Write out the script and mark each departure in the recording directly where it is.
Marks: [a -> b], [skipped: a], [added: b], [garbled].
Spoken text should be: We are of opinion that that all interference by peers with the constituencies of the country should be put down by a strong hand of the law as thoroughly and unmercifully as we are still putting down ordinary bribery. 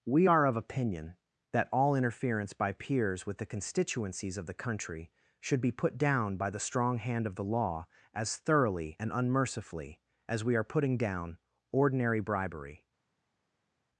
We are of opinion that [skipped: that] all interference by peers with the constituencies of the country should be put down by [a -> the] strong hand of the law as thoroughly and unmercifully as we are [skipped: still] putting down ordinary bribery.